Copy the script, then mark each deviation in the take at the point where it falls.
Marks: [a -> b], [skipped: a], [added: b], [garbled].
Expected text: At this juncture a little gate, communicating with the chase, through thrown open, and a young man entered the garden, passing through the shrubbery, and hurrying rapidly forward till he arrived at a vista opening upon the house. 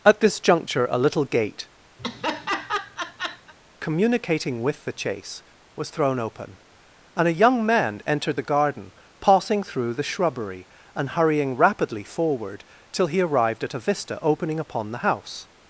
At this juncture a little gate, communicating with the chase, [through -> was] thrown open, and a young man entered the garden, passing through the shrubbery, and hurrying rapidly forward till he arrived at a vista opening upon the house.